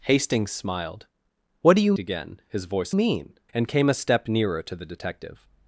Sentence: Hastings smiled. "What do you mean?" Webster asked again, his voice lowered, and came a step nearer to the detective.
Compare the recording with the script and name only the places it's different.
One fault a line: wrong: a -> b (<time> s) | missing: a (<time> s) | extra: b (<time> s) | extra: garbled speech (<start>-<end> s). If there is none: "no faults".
missing: mean Webster asked (1.9 s)
wrong: lowered -> mean (2.9 s)